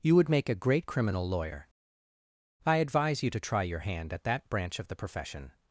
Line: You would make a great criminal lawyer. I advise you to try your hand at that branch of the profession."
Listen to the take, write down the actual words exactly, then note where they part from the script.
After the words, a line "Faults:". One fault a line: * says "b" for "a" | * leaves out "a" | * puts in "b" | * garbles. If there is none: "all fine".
You would make a great criminal lawyer. I advise you to try your hand at that branch of the profession."
Faults:
all fine